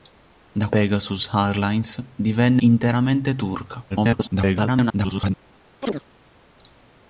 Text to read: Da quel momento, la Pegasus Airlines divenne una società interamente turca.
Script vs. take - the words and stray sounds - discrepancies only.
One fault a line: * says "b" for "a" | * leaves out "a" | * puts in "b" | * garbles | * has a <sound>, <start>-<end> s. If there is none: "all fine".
* leaves out "quel momento la"
* leaves out "una società"
* garbles
* has a chirp, 5.8-6.0 s